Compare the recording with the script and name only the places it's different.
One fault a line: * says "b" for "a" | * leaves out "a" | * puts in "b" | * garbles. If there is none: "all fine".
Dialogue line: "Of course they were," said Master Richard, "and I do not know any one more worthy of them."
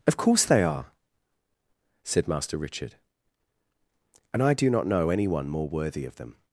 * says "are" for "were"